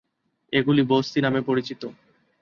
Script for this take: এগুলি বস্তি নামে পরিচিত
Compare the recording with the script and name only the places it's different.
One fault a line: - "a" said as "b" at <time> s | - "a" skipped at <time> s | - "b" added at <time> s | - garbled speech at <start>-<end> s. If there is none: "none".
none